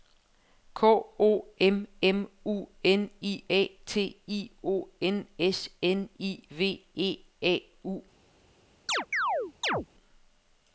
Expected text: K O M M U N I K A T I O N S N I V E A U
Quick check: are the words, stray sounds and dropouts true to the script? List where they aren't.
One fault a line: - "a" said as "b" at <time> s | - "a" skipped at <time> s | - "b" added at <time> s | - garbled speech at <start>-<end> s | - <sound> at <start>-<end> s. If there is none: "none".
- "K" skipped at 3.4 s
- chirp at 8.9-9.9 s